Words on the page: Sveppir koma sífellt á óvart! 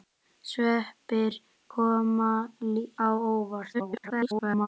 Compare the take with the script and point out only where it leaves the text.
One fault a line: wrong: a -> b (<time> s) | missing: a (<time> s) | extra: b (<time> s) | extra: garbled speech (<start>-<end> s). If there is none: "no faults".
missing: sífellt (2.3 s)
extra: garbled speech (3.7-4.7 s)